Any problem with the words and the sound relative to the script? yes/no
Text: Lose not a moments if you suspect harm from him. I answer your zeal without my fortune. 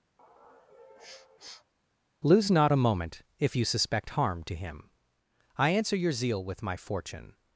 yes